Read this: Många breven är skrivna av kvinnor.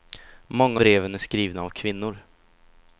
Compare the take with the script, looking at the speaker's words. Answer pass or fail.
pass